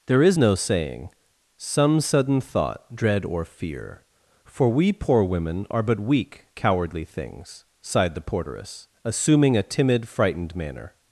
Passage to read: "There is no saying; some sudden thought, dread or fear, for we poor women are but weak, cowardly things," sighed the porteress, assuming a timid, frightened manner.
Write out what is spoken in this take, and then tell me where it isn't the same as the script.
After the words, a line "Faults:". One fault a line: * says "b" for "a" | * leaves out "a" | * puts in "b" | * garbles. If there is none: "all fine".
"There is no saying; some sudden thought, dread or fear, for we poor women are but weak, cowardly things," sighed the porteress, assuming a timid, frightened manner.
Faults:
all fine